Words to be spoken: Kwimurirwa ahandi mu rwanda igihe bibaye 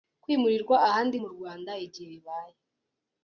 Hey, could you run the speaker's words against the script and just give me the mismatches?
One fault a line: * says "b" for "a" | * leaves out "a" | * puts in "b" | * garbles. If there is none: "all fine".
all fine